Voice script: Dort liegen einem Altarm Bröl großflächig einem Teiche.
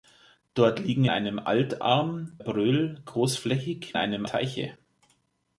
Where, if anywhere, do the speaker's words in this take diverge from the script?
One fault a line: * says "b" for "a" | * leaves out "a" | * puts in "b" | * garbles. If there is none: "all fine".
all fine